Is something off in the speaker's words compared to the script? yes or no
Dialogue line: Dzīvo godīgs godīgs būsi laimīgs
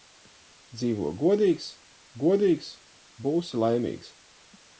no